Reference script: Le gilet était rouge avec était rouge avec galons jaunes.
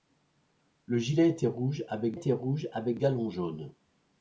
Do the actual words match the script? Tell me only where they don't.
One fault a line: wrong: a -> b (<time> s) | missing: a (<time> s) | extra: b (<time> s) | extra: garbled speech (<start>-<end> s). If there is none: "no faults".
no faults